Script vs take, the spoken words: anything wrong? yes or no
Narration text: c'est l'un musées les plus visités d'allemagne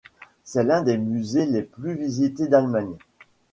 yes